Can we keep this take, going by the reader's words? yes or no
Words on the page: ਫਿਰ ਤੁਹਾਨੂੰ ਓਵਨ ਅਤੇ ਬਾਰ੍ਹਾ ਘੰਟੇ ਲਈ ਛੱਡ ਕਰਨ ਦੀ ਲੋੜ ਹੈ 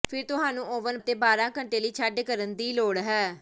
yes